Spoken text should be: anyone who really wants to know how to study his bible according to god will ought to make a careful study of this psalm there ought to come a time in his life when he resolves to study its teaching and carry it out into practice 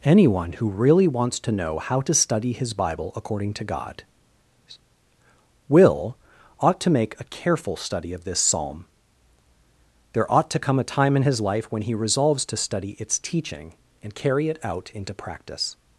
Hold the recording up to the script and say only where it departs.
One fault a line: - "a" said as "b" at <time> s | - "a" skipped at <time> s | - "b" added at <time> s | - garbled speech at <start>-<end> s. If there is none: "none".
none